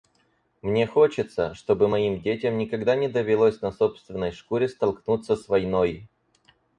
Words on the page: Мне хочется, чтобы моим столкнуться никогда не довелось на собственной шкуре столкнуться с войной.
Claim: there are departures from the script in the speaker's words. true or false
true